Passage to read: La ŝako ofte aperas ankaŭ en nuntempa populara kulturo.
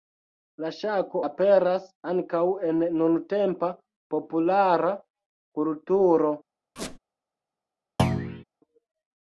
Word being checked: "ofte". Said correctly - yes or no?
no